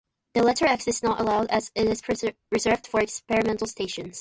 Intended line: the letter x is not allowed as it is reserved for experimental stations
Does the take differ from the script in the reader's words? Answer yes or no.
no